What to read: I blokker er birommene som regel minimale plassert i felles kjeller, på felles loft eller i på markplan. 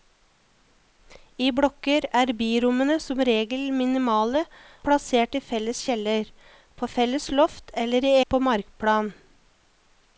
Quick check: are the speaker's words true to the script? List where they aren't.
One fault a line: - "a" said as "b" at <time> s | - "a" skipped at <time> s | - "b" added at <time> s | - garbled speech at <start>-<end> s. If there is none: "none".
none